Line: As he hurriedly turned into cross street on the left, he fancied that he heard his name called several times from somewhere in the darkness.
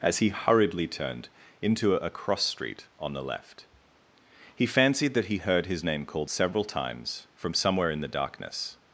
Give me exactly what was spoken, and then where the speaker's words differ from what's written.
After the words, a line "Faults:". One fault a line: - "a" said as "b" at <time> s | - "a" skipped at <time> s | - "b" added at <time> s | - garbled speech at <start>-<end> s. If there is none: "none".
As he hurriedly turned into a cross street on the left, he fancied that he heard his name called several times from somewhere in the darkness.
Faults:
- "a" added at 1.9 s